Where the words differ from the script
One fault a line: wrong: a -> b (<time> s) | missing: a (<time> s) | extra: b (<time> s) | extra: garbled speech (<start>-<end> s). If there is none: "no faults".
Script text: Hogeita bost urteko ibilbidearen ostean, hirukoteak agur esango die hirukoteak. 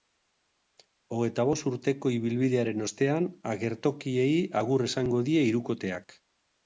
wrong: hirukoteak -> agertokiei (3.5 s)